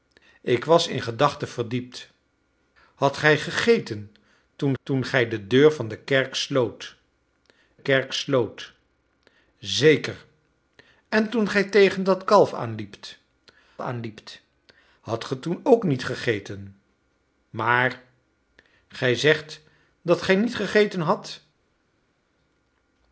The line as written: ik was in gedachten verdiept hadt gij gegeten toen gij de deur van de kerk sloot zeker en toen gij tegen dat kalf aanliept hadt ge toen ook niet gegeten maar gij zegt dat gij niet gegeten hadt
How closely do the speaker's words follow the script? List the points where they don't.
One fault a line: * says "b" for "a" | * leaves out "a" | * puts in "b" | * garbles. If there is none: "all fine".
* puts in "toen"
* puts in "kerk sloot"
* puts in "aanliept"